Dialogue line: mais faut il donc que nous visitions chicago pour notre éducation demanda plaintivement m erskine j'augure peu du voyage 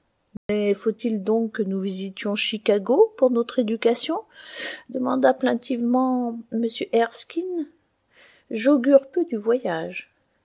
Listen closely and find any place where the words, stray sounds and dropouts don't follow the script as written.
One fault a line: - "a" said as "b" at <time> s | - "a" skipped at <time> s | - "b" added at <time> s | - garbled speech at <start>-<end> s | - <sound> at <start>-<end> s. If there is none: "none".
- dropout at 0.4-0.5 s